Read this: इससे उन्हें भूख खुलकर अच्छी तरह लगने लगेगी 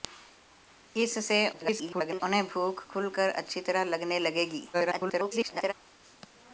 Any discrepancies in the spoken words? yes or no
yes